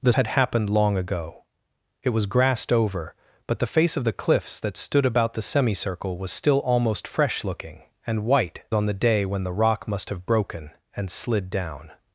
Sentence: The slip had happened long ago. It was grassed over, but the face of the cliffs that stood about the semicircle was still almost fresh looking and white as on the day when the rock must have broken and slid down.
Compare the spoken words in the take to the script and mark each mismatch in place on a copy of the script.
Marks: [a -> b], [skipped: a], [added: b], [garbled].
The [skipped: slip] had happened long ago. It was grassed over, but the face of the cliffs that stood about the semicircle was still almost fresh looking and white [skipped: as] on the day when the rock must have broken and slid down.